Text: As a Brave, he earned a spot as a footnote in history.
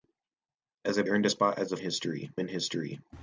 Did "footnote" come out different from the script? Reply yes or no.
yes